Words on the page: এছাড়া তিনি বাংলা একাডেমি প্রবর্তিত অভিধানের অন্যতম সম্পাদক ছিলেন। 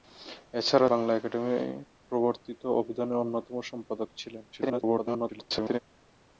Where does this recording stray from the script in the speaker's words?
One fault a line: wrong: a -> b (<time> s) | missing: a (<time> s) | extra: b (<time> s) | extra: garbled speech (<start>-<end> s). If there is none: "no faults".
missing: তিনি (0.9 s)
extra: garbled speech (4.5-5.8 s)